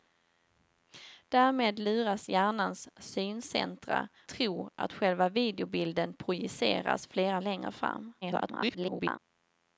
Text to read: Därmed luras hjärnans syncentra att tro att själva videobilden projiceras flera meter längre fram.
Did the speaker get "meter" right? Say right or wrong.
wrong